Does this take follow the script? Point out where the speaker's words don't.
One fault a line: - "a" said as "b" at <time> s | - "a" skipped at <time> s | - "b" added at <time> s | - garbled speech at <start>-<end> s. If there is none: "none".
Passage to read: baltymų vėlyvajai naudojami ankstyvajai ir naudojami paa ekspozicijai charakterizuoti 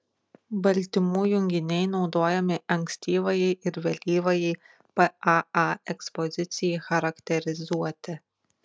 - "vėlyvajai" said as "junginiai" at 1.3 s
- "naudojami" said as "vėlyvajai" at 3.9 s